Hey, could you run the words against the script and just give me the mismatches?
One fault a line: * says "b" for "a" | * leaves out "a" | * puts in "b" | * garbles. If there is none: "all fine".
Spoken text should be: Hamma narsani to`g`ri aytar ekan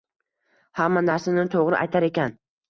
all fine